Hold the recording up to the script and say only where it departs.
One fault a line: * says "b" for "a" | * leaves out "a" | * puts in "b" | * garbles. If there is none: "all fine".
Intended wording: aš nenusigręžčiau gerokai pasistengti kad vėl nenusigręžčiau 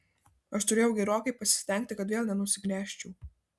* says "turėjau" for "nenusigręžčiau"